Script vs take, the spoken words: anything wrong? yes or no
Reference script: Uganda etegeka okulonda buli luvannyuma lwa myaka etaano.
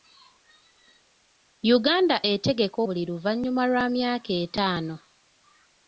yes